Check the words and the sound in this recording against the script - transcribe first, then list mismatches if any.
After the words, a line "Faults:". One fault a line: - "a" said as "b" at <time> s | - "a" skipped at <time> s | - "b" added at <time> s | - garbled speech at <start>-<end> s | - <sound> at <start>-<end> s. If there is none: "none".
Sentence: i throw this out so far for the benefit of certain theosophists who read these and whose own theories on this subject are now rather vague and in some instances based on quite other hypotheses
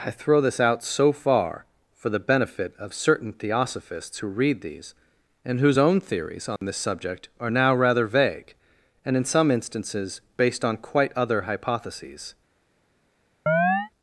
i throw this out so far for the benefit of certain theosophists who read these and whose own theories on this subject are now rather vague and in some instances based on quite other hypotheses
Faults:
- dropout at 6.6-6.6 s
- chirp at 13.5-13.9 s